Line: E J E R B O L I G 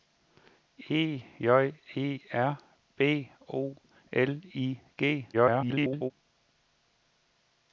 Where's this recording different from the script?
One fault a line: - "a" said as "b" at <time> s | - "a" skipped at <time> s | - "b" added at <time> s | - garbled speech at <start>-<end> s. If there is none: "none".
- garbled speech at 5.3-6.1 s